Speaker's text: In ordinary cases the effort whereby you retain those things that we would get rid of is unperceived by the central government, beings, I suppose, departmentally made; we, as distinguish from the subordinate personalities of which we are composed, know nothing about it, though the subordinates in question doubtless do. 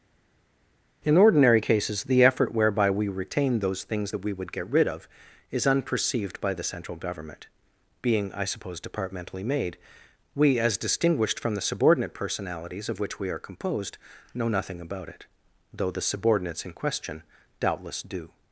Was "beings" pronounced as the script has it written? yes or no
no